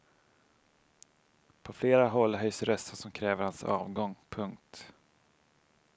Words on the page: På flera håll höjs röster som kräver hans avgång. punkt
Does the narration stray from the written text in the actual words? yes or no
no